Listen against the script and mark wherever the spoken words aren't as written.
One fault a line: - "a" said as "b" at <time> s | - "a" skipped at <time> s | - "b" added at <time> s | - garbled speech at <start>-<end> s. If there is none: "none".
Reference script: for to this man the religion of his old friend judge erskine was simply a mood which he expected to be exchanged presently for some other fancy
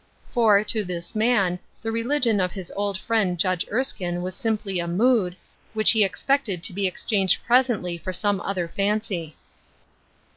none